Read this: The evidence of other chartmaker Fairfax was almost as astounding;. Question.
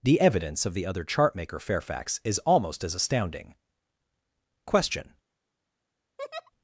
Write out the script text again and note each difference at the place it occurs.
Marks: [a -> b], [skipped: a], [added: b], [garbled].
The evidence of [added: the] other chartmaker Fairfax [was -> is] almost as astounding;. Question.